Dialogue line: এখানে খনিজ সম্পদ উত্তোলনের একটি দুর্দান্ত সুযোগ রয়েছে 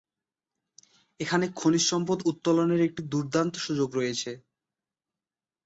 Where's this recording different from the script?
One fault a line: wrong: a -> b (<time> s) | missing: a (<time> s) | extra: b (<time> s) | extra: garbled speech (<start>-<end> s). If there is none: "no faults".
no faults